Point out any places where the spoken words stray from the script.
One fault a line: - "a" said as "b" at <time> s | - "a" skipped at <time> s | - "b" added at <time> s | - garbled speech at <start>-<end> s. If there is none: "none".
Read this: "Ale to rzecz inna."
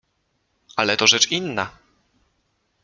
none